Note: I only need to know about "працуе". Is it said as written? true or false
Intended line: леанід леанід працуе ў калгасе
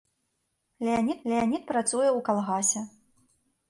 true